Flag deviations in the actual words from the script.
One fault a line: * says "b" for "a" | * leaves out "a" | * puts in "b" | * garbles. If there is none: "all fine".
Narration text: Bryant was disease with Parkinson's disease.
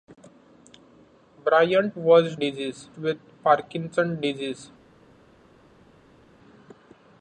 all fine